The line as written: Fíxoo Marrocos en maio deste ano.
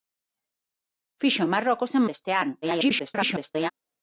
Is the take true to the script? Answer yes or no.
no